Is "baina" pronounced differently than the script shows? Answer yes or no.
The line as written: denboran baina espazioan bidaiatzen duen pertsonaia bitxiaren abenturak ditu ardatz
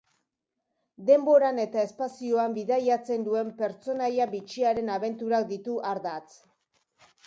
yes